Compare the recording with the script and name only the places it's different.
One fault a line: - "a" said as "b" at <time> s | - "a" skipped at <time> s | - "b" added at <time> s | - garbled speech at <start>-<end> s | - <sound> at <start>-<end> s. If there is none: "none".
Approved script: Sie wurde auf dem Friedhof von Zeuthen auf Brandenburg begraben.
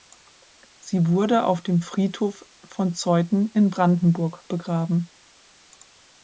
- "auf" said as "in" at 3.5 s